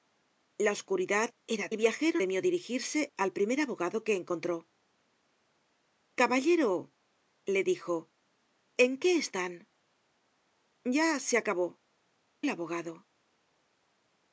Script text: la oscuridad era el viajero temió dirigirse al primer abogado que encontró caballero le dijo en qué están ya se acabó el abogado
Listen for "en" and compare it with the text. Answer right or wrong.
right